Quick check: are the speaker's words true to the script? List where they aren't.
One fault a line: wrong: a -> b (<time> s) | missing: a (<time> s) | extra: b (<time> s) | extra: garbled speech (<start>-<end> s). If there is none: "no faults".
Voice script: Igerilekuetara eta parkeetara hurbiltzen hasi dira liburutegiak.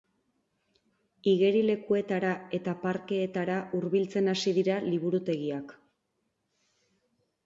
no faults